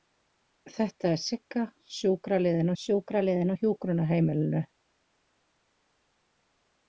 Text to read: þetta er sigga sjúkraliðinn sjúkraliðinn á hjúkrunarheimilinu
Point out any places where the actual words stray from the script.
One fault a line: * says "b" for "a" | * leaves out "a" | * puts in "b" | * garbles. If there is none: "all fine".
all fine